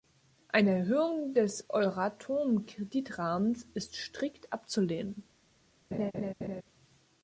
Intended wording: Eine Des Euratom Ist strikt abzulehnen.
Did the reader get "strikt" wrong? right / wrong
right